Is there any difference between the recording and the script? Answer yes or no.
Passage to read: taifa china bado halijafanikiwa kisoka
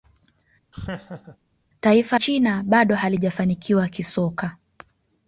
no